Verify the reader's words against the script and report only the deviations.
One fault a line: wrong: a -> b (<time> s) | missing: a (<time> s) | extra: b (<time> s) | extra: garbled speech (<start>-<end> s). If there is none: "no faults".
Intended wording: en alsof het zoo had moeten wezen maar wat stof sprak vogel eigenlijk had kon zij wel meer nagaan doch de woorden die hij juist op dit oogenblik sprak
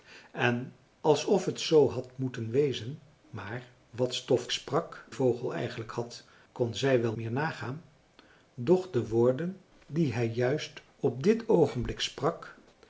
no faults